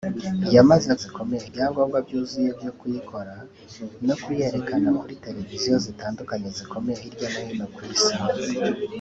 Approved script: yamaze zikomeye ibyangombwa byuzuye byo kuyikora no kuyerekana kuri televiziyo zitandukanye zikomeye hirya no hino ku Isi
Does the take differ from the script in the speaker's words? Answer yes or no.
no